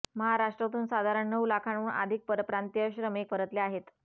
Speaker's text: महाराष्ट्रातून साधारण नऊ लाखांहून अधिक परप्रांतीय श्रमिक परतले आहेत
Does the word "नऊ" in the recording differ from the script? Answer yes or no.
no